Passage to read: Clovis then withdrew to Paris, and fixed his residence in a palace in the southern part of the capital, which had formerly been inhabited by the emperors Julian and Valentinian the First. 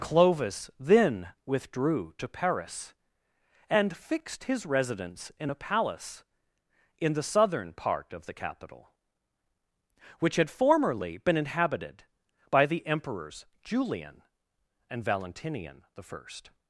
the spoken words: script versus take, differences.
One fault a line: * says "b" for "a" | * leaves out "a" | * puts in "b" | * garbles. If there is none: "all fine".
all fine